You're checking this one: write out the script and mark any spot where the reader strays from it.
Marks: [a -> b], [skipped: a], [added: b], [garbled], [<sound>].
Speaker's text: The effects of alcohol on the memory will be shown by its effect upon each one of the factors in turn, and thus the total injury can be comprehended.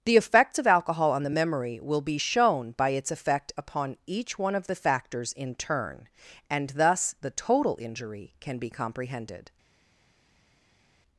The effects of alcohol on the memory will be shown by its effect upon each one of the factors in turn, and thus the total injury can be comprehended.